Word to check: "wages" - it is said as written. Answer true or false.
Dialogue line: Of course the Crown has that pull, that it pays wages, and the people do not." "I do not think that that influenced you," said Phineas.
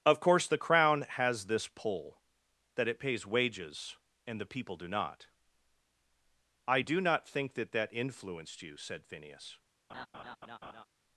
true